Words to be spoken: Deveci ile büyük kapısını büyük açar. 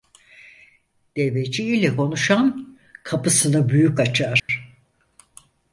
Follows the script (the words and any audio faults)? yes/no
no